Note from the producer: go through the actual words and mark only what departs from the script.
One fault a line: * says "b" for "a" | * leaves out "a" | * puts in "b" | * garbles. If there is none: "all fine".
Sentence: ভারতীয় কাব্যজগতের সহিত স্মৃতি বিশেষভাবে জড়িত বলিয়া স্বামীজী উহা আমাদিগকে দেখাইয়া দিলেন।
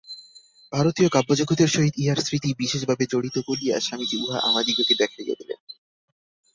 * puts in "ইহার"